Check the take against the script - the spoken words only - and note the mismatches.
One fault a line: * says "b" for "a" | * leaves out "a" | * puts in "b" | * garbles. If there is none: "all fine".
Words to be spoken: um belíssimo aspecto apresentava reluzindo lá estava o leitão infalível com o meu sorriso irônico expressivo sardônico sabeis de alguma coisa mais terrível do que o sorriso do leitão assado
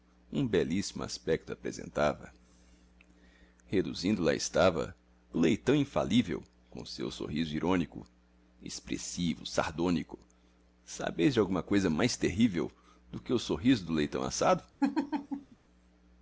* says "seu" for "meu"